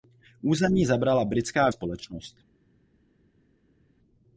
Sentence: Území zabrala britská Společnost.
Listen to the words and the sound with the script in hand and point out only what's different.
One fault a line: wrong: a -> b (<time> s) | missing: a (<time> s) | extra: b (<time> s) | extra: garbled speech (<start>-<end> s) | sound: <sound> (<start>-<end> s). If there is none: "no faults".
no faults